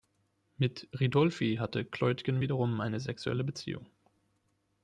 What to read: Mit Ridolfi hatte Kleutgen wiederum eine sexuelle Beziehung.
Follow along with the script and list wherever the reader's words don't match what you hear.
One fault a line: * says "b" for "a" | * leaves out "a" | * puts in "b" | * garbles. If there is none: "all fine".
all fine